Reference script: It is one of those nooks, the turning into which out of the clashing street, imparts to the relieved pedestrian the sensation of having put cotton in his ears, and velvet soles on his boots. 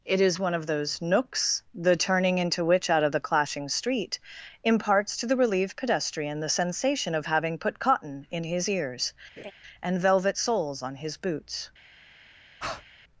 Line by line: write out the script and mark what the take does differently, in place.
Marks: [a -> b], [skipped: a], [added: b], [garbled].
It is one of those nooks, the turning into which out of the clashing street, imparts to the relieved pedestrian the sensation of having put cotton in his ears, and velvet soles on his boots.